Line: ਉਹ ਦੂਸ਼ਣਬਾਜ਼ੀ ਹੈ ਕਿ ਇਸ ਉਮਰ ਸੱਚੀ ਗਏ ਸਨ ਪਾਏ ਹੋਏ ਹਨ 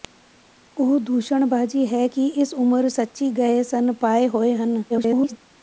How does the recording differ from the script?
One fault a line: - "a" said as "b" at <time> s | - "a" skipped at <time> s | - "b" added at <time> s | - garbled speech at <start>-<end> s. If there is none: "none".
- garbled speech at 4.9-5.4 s